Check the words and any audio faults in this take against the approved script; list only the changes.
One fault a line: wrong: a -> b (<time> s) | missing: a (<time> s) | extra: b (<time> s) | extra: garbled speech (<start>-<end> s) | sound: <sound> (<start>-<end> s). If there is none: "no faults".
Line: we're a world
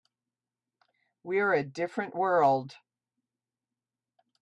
extra: different (1.6 s)